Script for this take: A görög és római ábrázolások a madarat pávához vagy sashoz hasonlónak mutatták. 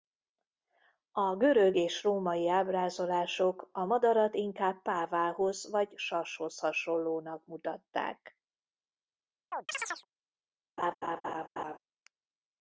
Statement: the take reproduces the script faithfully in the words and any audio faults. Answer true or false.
false